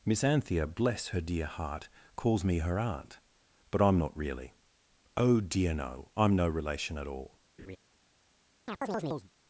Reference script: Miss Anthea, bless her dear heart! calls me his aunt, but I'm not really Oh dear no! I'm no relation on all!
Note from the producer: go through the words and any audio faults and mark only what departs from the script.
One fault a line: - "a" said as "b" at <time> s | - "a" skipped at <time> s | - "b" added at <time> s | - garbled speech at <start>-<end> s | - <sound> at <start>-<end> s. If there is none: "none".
- "his" said as "her" at 2.6 s
- "on" said as "at" at 7.0 s
- laugh at 7.6-7.8 s
- chirp at 8.7-9.3 s